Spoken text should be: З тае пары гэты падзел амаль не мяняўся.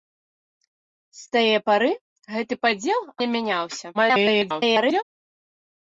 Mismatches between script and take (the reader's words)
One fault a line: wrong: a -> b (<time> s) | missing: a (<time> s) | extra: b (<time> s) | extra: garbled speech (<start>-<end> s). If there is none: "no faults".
missing: амаль (3.0 s)
extra: garbled speech (3.9-5.0 s)